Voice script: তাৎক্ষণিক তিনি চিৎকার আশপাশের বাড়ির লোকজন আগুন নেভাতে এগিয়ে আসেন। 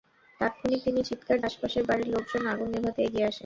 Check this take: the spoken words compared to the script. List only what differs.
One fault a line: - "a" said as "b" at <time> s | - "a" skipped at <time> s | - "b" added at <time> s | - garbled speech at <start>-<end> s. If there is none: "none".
none